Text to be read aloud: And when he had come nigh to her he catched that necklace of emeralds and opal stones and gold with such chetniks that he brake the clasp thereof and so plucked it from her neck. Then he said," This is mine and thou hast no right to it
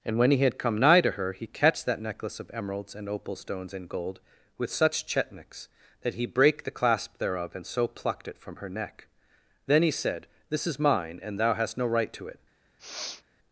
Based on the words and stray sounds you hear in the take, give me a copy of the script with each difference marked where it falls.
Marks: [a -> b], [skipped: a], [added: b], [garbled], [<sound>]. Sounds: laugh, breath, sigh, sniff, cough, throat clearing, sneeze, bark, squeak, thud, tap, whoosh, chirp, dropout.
And when he had come nigh to her he catched that necklace of emeralds and opal stones and gold with such chetniks that he brake the clasp thereof and so plucked it from her neck. Then he said," This is mine and thou hast no right to it [sniff]